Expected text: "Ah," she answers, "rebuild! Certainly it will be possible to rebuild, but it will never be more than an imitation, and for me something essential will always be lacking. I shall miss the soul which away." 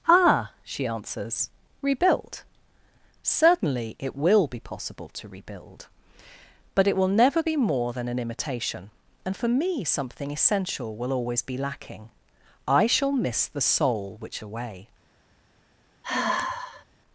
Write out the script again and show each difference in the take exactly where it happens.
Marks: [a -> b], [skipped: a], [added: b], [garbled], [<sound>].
"Ah," she answers, "rebuild! Certainly it will be possible to rebuild, but it will never be more than an imitation, and for me something essential will always be lacking. I shall miss the soul which away." [sigh]